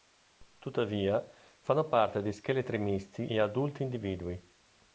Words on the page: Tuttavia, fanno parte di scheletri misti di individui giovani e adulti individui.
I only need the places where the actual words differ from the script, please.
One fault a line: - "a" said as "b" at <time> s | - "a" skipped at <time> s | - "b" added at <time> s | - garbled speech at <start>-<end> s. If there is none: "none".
- "di individui giovani" skipped at 3.3 s